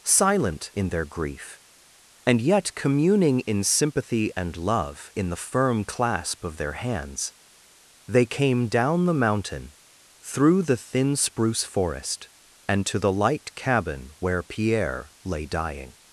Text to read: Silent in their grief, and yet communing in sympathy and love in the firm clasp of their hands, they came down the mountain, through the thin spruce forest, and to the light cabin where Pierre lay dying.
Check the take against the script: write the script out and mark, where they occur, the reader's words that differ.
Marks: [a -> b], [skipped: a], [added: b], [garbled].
Silent in their grief, and yet communing in sympathy and love in the firm clasp of their hands, they came down the mountain, through the thin spruce forest, and to the light cabin where Pierre lay dying.